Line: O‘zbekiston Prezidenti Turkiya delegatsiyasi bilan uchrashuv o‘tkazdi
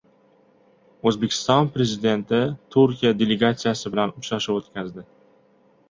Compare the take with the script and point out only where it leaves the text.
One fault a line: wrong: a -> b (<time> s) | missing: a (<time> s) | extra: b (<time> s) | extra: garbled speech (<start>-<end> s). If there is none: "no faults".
no faults